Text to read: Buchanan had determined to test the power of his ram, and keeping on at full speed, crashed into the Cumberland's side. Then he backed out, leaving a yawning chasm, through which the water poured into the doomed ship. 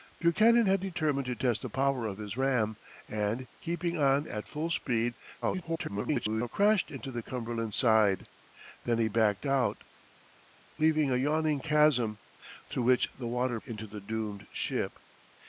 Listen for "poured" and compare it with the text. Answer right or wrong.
wrong